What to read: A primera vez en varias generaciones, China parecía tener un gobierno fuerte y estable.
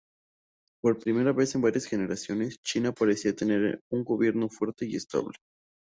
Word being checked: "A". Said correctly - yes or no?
no